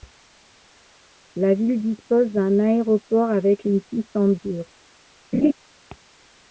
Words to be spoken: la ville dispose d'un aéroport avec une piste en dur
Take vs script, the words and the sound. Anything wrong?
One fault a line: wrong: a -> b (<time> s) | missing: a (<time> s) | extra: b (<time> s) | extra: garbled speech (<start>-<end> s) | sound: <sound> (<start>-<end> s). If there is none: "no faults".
sound: laugh (5.3-5.5 s)